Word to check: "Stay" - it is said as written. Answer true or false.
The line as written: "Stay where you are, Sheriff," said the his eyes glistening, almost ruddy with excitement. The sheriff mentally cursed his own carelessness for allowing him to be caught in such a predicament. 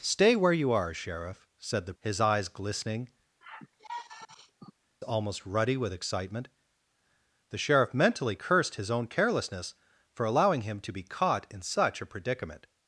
true